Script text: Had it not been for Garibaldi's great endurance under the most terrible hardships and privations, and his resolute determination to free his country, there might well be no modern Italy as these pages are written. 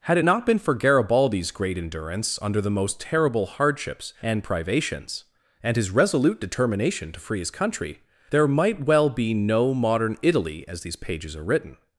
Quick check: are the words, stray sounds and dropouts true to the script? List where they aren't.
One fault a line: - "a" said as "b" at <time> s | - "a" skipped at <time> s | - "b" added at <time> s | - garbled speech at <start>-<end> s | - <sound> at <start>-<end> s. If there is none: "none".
none